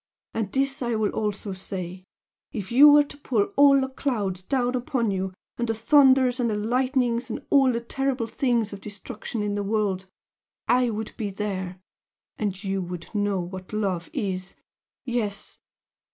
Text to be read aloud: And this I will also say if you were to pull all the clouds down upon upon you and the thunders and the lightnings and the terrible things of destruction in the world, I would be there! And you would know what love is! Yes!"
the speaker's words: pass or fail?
fail